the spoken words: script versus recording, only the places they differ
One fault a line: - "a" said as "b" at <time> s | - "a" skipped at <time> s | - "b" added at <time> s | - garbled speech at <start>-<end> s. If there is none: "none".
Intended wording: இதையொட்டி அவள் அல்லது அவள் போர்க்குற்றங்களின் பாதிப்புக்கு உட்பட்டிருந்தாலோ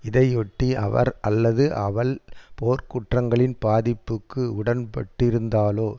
- "அவள்" said as "அவர்" at 0.8 s